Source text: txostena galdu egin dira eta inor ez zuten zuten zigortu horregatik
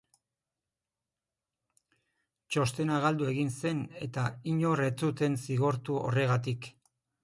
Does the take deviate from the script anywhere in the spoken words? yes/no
yes